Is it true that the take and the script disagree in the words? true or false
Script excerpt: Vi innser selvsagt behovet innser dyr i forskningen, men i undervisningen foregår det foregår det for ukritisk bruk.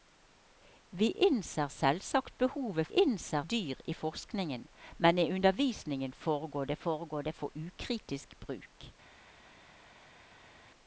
false